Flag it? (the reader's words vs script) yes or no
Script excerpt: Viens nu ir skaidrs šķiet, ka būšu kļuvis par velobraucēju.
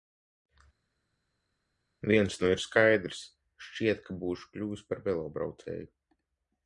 no